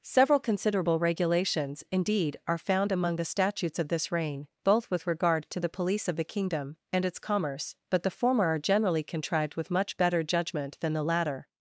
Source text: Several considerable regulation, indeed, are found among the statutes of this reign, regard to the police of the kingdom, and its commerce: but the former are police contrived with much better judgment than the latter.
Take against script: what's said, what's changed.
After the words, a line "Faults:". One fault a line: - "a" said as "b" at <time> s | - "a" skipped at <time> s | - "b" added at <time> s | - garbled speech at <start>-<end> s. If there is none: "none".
Several considerable regulations, indeed, are found among the statutes of this reign, both with regard to the police of the kingdom, and its commerce: but the former are generally contrived with much better judgment than the latter.
Faults:
- "regulation" said as "regulations" at 1.0 s
- "both with" added at 4.6 s
- "police" said as "generally" at 8.6 s